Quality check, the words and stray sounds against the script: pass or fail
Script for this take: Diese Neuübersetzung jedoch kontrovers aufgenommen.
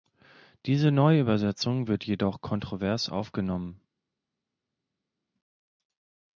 fail